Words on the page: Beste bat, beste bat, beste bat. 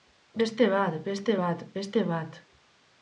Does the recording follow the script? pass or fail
pass